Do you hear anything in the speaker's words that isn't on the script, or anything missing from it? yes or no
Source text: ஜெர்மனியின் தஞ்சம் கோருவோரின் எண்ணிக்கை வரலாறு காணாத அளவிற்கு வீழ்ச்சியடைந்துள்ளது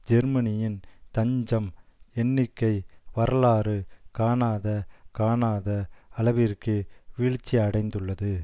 yes